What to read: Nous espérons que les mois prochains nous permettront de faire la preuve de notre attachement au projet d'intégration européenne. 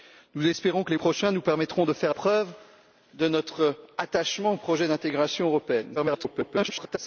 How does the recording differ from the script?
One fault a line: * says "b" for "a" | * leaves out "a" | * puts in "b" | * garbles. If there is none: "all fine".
* leaves out "mois"
* leaves out "la"
* garbles